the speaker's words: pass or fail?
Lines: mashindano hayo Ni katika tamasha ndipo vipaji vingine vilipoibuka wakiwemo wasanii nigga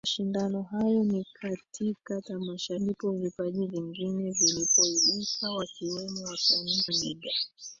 pass